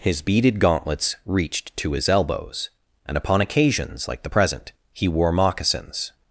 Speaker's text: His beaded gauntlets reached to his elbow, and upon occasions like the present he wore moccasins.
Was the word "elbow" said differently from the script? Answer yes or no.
yes